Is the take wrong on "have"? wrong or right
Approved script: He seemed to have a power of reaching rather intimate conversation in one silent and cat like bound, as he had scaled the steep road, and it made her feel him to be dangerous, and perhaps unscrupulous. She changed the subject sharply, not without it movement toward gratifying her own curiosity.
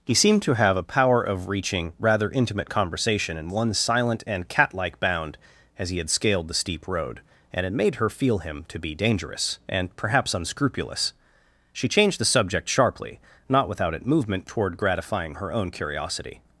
right